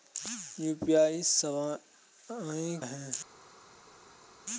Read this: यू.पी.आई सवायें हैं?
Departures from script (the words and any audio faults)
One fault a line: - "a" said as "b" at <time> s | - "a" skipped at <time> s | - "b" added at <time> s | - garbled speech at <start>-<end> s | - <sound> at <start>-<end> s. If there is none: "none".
none